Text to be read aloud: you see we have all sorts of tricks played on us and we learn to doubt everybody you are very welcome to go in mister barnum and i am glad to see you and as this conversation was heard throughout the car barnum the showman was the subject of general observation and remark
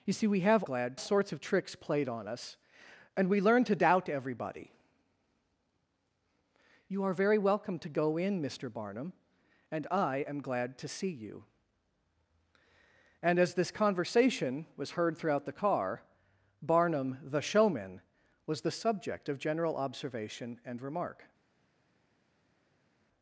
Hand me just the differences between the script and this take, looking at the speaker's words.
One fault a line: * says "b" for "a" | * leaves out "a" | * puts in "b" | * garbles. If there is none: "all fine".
* says "glad" for "all"